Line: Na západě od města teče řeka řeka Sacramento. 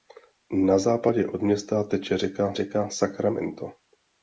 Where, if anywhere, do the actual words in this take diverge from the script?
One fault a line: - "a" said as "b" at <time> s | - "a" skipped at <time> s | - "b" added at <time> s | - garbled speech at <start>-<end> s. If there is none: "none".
none